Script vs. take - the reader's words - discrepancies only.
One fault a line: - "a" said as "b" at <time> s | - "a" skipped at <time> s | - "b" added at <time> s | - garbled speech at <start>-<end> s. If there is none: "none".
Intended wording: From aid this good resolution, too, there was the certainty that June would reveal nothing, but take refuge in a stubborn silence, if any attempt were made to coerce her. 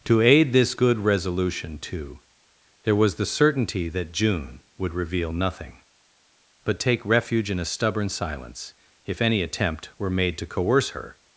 - "From" said as "To" at 0.1 s